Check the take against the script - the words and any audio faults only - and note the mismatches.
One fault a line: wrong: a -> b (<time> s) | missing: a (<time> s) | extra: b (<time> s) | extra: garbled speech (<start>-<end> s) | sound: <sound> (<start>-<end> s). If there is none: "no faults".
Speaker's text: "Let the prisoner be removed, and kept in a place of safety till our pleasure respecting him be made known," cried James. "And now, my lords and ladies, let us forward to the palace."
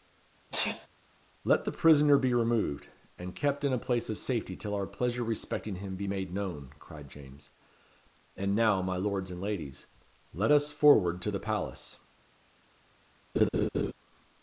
sound: sneeze (0.5-0.9 s)
sound: laugh (13.3-13.9 s)